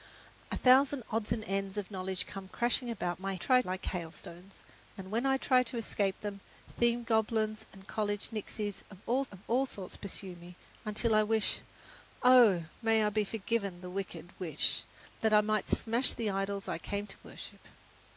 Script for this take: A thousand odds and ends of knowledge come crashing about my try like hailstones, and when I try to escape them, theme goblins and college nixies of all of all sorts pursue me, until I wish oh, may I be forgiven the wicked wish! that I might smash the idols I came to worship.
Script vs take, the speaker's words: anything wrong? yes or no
no